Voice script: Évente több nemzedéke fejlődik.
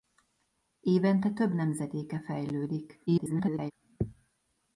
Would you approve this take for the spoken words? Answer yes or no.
no